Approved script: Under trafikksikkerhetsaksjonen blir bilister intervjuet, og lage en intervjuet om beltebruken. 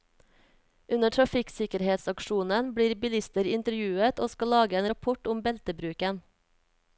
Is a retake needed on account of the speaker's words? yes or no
yes